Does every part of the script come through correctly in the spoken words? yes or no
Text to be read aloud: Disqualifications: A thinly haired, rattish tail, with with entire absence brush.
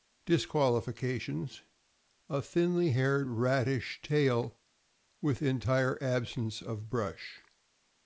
no